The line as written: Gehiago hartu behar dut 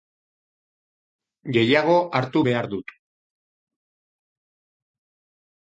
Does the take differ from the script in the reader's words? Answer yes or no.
no